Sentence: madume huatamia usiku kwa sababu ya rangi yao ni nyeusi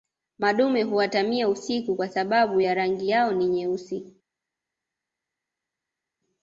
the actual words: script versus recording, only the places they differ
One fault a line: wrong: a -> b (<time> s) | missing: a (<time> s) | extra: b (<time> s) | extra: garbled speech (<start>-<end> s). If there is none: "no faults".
no faults